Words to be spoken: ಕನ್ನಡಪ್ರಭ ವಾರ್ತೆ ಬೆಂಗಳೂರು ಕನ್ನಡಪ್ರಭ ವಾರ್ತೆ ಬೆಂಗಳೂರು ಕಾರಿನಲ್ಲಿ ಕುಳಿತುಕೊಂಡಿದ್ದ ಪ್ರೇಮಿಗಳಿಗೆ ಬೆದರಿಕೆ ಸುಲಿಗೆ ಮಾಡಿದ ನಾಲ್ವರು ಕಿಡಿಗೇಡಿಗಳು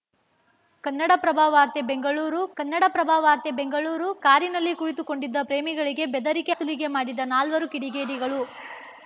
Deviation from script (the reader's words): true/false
false